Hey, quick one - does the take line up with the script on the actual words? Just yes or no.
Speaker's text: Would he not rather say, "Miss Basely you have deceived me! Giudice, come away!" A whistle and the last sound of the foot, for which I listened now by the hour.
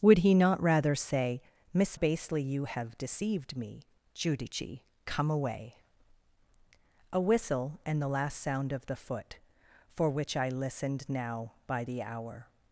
yes